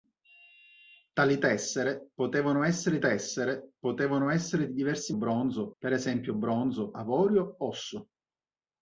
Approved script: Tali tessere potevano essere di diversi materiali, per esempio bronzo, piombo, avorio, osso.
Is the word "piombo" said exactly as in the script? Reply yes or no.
no